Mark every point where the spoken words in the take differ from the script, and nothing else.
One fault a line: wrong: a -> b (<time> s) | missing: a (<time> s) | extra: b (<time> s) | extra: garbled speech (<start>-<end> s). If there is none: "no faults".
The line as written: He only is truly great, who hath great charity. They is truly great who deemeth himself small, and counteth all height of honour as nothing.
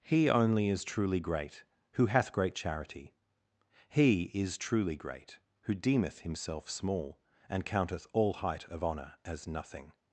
wrong: They -> He (3.9 s)